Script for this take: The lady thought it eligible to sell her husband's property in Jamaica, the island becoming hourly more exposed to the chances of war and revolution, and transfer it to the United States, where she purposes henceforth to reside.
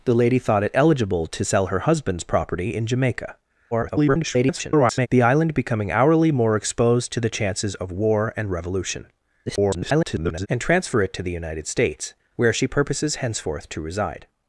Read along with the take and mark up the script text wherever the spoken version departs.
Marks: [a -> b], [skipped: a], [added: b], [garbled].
The lady thought it eligible to sell her husband's property in Jamaica, [garbled] the island becoming hourly more exposed to the chances of war and revolution, [garbled] and transfer it to the United States, where she purposes henceforth to reside.